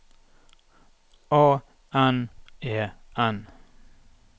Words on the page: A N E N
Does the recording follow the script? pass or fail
pass